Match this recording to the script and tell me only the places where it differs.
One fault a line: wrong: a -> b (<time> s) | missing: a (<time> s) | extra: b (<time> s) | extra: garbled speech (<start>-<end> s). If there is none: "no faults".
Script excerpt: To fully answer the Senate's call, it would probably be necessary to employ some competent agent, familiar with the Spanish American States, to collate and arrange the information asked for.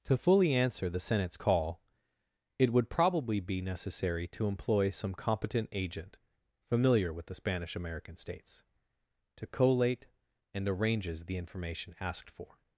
wrong: arrange -> arranges (10.7 s)